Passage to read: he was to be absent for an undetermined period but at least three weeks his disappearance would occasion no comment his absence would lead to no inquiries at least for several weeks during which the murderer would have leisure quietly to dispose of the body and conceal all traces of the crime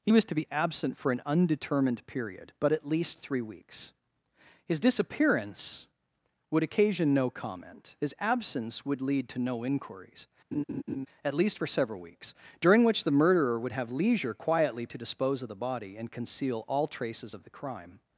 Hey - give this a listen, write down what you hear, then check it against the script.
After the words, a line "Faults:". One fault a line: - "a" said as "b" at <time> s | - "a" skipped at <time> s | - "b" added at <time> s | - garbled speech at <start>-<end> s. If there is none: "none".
he was to be absent for an undetermined period but at least three weeks his disappearance would occasion no comment his absence would lead to no inquiries at least for several weeks during which the murderer would have leisure quietly to dispose of the body and conceal all traces of the crime
Faults:
none